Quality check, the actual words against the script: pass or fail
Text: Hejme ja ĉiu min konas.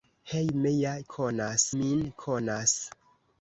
fail